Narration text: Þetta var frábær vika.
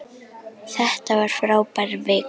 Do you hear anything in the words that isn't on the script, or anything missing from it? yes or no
no